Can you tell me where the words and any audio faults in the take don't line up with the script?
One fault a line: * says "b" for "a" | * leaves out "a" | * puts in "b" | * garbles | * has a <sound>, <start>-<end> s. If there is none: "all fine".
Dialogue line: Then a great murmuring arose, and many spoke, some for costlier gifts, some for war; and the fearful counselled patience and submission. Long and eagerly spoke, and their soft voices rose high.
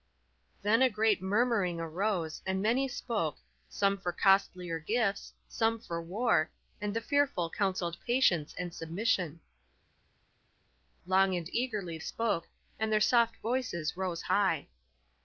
all fine